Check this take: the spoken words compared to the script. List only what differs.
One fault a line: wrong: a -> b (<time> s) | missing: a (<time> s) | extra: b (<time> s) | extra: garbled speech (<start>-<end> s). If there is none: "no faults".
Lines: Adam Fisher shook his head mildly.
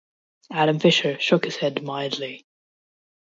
no faults